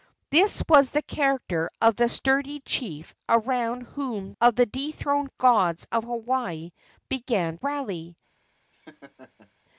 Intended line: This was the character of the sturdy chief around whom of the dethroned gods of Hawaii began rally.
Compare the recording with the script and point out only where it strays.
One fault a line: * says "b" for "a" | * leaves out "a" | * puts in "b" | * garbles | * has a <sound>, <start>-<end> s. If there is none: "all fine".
* has a laugh, 8.7-9.5 s